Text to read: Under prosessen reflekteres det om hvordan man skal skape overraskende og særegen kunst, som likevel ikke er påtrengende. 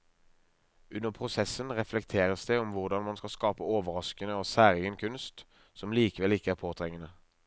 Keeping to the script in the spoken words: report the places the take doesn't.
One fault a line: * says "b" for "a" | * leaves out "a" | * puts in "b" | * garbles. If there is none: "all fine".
all fine